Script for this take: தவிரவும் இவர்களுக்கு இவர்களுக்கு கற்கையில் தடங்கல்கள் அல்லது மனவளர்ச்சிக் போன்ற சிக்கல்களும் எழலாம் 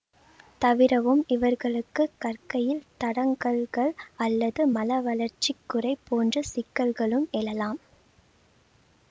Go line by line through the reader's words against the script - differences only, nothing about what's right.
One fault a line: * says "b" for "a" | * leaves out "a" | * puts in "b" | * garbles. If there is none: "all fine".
* leaves out "இவர்களுக்கு"
* puts in "குறை"